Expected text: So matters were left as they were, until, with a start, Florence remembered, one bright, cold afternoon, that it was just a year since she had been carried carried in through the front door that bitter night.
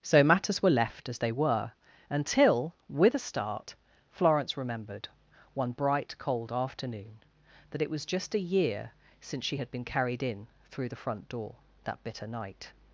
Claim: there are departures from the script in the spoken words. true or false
true